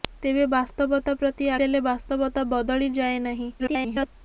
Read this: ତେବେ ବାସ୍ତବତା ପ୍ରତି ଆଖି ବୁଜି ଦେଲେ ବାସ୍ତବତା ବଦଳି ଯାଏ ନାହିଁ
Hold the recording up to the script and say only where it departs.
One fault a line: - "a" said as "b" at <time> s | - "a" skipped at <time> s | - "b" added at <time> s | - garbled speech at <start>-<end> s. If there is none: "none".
- "ଆଖି ବୁଜି" skipped at 1.5 s
- garbled speech at 3.6-4.1 s